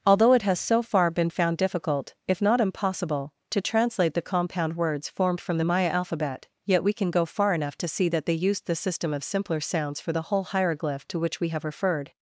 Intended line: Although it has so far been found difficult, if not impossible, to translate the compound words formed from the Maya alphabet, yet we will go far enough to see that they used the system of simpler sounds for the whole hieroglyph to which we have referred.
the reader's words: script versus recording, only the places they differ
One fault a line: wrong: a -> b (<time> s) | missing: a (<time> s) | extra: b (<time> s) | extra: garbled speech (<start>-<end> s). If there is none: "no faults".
wrong: will -> can (6.9 s)